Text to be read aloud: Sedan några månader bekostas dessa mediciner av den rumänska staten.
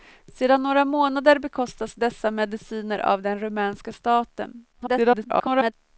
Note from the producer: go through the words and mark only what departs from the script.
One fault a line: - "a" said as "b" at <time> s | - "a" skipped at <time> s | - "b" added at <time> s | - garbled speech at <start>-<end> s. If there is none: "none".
- garbled speech at 4.7-5.7 s